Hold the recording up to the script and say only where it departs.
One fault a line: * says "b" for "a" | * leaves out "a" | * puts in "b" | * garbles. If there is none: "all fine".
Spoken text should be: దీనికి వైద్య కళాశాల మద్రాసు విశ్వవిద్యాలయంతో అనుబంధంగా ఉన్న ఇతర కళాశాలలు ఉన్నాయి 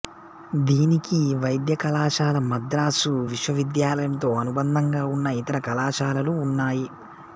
all fine